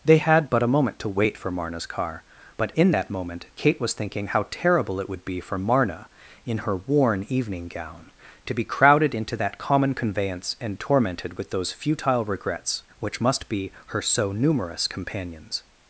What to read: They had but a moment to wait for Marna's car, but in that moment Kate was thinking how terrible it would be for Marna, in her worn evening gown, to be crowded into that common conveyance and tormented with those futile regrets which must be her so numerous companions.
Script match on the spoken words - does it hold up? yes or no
yes